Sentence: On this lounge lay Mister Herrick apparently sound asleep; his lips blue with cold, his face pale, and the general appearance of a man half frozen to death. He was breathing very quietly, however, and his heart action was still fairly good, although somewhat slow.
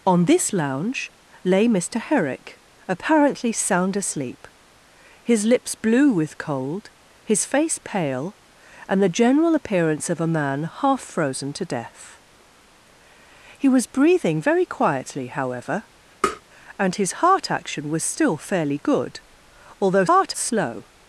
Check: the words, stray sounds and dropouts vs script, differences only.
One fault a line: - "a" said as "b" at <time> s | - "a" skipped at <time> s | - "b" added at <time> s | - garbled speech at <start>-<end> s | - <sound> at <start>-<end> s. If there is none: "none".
- tap at 16.2-16.4 s
- "somewhat" said as "heart" at 20.1 s